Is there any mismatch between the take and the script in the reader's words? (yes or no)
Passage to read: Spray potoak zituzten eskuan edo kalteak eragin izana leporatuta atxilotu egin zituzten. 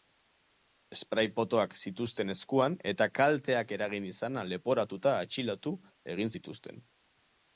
yes